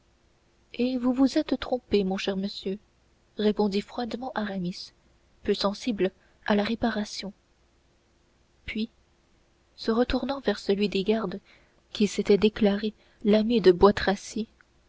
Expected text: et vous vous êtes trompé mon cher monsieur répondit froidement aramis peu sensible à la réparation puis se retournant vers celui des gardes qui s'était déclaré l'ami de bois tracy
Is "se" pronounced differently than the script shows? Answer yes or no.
no